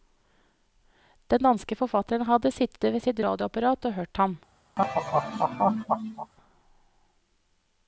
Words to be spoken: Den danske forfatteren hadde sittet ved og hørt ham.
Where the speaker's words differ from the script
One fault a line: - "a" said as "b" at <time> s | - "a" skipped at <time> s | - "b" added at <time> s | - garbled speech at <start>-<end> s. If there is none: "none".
- "sitt radioapparat" added at 3.1 s